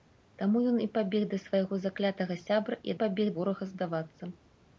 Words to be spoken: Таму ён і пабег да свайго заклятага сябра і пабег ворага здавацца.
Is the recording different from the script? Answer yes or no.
no